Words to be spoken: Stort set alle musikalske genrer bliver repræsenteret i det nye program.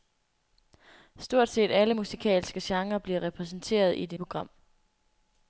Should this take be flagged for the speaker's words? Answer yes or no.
yes